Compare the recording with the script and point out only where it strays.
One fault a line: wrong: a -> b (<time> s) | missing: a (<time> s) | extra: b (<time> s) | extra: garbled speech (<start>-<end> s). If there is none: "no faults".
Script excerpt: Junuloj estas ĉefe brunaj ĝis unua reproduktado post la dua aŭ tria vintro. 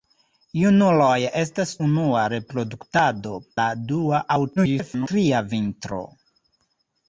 missing: ĉefe brunaj ĝis (1.7 s)
missing: post (3.4 s)
extra: garbled speech (4.6-5.1 s)